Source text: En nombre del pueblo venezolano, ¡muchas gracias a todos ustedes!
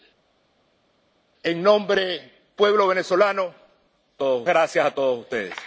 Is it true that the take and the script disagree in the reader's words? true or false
true